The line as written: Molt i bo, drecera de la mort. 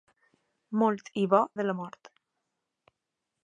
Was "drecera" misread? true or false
true